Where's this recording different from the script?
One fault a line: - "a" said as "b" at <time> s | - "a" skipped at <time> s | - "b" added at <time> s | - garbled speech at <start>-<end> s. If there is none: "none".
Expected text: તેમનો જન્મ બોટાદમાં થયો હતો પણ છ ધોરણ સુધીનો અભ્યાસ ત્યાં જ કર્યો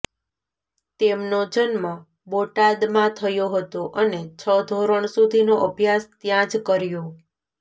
- "પણ" said as "અને" at 4.0 s